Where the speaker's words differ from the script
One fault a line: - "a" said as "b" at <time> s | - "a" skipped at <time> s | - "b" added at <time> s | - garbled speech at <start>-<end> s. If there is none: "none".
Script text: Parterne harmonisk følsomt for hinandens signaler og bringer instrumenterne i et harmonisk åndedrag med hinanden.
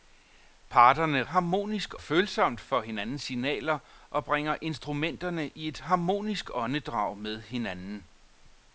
none